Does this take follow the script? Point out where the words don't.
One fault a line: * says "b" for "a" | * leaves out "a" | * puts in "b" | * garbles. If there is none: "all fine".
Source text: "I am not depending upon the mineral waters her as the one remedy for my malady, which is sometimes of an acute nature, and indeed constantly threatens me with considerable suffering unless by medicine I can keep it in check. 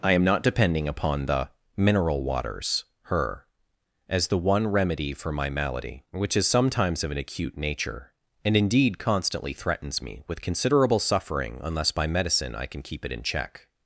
all fine